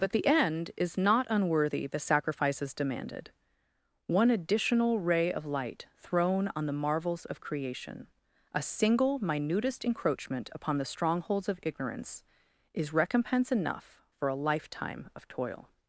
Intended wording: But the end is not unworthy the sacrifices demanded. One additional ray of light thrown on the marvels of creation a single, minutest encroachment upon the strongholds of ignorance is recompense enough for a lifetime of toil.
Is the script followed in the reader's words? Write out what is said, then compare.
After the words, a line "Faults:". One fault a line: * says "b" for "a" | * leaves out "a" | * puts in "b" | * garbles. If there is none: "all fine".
But the end is not unworthy the sacrifices demanded. One additional ray of light thrown on the marvels of creation a single, minutest encroachment upon the strongholds of ignorance is recompense enough for a lifetime of toil.
Faults:
all fine